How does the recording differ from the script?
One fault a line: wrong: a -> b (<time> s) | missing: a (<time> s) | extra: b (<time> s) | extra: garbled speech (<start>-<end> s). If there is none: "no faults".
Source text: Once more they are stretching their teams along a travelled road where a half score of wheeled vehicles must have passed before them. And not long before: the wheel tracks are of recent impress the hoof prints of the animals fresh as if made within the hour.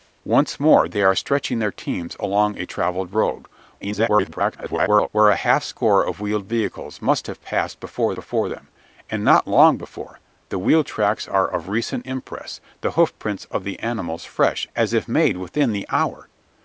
extra: garbled speech (3.8-5.1 s)
extra: before (8.1 s)